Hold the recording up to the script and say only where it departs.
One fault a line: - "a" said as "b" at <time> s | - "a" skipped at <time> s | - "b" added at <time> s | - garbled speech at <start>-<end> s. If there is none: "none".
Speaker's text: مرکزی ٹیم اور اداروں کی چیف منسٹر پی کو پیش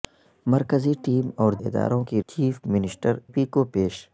none